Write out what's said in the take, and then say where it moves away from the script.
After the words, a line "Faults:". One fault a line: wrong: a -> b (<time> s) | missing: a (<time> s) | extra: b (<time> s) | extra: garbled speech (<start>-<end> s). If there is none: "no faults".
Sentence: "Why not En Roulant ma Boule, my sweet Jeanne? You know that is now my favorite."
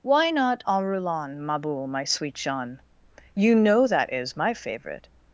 "Why not En Roulant ma Boule, my sweet Jeanne? You know that is my favorite."
Faults:
missing: now (4.3 s)